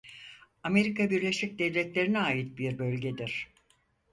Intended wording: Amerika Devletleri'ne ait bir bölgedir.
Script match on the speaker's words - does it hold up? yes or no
no